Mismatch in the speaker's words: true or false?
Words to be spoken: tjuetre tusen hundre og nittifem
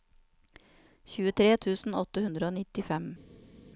true